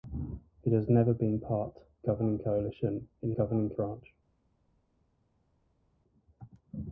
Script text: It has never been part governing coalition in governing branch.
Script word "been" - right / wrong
right